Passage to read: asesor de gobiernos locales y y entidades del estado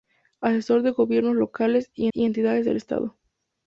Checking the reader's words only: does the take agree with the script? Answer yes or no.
yes